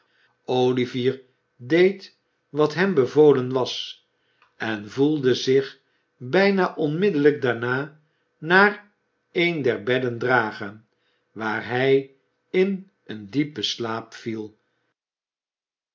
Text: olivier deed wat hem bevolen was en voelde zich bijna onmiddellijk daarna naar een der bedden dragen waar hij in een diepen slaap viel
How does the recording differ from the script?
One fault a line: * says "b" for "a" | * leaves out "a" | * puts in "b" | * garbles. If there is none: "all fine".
all fine